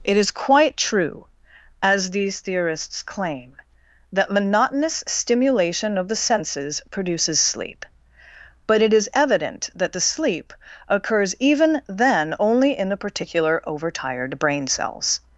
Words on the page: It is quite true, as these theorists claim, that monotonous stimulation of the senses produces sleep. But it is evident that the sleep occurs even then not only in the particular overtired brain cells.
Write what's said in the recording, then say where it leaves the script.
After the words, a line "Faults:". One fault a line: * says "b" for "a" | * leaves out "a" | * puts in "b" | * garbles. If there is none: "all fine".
It is quite true, as these theorists claim, that monotonous stimulation of the senses produces sleep. But it is evident that the sleep occurs even then only in the particular overtired brain cells.
Faults:
* leaves out "not"